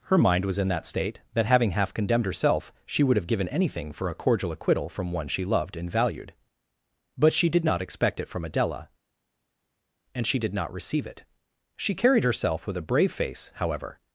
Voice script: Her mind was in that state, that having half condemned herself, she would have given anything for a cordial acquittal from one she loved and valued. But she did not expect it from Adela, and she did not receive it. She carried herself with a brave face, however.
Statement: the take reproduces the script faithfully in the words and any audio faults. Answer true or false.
true